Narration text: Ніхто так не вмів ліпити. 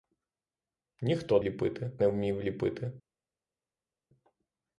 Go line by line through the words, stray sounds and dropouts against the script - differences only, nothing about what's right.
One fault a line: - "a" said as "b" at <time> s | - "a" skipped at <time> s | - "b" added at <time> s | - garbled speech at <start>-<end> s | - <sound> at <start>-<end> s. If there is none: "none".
- "так" said as "ліпити" at 1.4 s